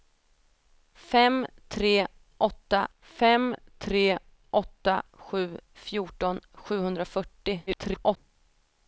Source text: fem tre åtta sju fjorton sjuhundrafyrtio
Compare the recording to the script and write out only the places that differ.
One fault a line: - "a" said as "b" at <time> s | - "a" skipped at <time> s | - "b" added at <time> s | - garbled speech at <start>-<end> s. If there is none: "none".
- "fem tre åtta" added at 3.0 s
- garbled speech at 7.7-8.2 s